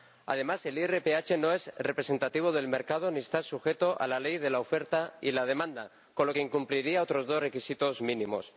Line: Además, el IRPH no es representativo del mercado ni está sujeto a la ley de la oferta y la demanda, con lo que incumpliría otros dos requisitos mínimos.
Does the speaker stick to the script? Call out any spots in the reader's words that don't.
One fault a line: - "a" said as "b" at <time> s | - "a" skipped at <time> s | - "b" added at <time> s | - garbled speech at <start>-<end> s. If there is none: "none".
none